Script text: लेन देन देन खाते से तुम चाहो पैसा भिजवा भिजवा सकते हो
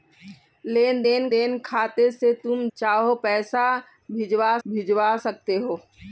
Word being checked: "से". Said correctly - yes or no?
yes